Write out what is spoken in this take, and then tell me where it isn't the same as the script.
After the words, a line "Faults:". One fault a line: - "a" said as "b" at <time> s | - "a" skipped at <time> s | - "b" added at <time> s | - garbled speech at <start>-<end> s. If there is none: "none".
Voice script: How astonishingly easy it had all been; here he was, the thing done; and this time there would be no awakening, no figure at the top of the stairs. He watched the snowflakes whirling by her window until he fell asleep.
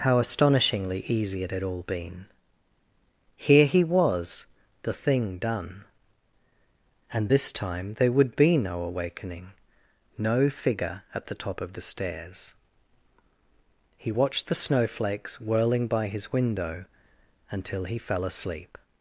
How astonishingly easy it had all been; here he was, the thing done; and this time there would be no awakening, no figure at the top of the stairs. He watched the snowflakes whirling by his window until he fell asleep.
Faults:
- "her" said as "his" at 16.1 s